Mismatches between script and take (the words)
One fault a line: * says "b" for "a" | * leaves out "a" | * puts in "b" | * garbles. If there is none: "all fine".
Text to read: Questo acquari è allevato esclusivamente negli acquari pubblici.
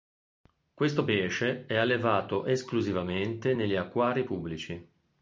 * says "pesce" for "acquari"